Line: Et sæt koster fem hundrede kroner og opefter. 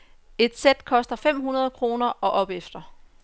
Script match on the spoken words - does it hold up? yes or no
yes